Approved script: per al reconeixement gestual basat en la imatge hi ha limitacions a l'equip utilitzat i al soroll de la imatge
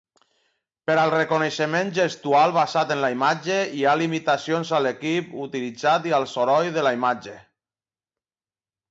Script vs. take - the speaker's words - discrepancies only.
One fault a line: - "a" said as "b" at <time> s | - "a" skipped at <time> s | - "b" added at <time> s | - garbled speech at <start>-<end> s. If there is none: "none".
none